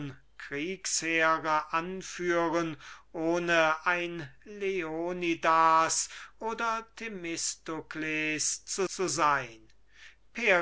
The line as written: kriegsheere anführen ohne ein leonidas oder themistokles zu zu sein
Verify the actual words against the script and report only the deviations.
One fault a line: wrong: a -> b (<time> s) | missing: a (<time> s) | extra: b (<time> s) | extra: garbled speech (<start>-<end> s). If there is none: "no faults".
no faults